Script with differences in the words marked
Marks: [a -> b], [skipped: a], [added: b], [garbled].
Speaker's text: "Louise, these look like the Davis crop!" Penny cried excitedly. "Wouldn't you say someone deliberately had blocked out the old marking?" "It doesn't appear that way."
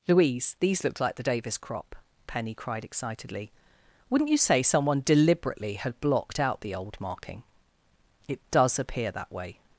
"Louise, these look like the Davis crop!" Penny cried excitedly. "Wouldn't you say someone deliberately had blocked out the old marking?" "It [doesn't -> does] appear that way."